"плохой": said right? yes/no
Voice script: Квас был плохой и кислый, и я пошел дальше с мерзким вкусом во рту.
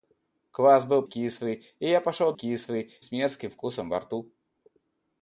no